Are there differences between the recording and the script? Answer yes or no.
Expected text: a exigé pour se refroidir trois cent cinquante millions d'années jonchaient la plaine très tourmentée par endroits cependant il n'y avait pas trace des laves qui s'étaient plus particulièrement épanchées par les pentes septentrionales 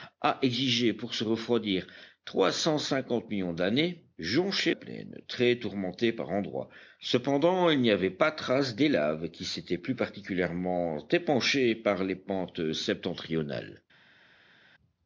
yes